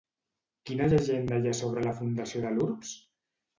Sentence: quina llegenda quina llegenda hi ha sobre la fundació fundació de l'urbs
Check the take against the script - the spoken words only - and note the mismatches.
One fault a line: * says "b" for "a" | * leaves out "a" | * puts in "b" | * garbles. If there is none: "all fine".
* leaves out "quina llegenda"
* leaves out "fundació"